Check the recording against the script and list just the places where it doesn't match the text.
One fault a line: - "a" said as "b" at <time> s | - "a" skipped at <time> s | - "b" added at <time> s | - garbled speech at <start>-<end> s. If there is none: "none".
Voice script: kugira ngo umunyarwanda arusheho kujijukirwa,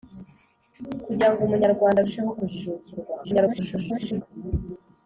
- garbled speech at 3.2-4.2 s